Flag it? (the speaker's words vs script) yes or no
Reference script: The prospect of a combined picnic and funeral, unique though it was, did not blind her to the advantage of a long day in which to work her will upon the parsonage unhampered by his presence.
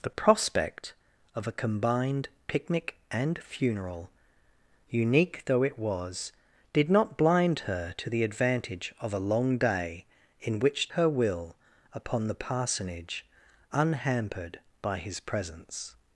yes